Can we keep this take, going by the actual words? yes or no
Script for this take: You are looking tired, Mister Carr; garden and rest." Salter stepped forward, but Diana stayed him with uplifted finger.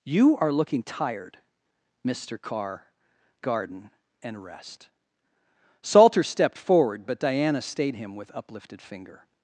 yes